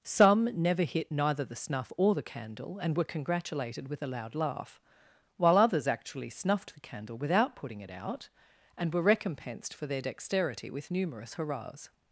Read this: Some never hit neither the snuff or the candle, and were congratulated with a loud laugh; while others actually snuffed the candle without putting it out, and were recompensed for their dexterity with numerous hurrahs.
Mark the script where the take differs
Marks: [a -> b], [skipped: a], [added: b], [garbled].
Some never hit neither the snuff or the candle, and were congratulated with a loud laugh; while others actually snuffed the candle without putting it out, and were recompensed for their dexterity with numerous hurrahs.